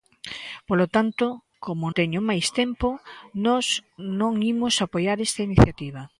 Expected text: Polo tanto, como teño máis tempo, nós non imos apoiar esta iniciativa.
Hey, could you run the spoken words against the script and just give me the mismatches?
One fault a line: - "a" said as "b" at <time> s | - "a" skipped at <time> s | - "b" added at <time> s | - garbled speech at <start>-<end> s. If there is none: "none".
none